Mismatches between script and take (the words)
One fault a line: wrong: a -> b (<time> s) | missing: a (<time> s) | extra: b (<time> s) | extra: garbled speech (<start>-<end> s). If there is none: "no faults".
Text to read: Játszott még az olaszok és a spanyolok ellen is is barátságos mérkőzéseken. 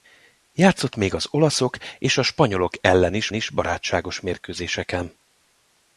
no faults